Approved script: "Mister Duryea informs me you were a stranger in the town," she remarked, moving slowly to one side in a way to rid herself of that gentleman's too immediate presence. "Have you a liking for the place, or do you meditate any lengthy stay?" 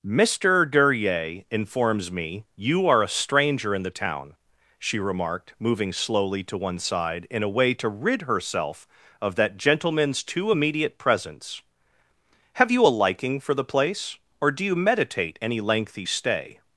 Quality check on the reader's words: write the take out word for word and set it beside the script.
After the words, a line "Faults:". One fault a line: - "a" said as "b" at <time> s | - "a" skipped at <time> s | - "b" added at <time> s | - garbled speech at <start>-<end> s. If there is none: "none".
"Mister Duryea informs me you are a stranger in the town," she remarked, moving slowly to one side in a way to rid herself of that gentleman's too immediate presence. "Have you a liking for the place, or do you meditate any lengthy stay?"
Faults:
- "were" said as "are" at 2.9 s